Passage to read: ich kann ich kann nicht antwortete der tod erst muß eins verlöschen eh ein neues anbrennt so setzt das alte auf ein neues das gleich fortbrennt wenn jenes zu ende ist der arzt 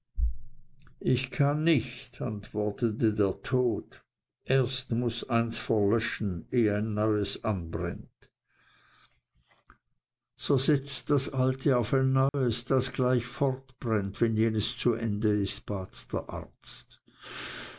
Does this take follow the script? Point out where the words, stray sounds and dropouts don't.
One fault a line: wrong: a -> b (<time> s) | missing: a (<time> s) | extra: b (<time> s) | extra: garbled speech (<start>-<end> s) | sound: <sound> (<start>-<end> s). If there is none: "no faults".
missing: ich kann (1.6 s)
sound: dropout (12.3-12.3 s)
extra: bat (15.7 s)